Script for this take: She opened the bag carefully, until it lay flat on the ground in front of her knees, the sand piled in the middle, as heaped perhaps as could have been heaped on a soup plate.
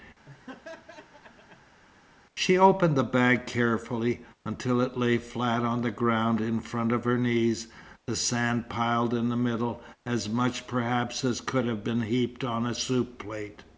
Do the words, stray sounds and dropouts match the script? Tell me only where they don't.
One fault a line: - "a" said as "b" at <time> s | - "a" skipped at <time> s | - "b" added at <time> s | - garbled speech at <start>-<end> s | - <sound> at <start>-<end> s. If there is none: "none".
- laugh at 0.3-1.8 s
- "heaped" said as "much" at 10.3 s